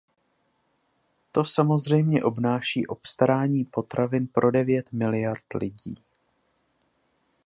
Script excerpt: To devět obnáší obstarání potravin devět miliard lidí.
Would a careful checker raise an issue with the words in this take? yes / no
yes